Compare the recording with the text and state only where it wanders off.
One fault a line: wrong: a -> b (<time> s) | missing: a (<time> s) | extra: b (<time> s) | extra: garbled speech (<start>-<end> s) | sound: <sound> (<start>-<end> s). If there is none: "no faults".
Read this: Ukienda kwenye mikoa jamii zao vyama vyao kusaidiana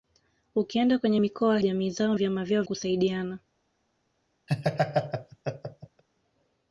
sound: laugh (4.5-6.0 s)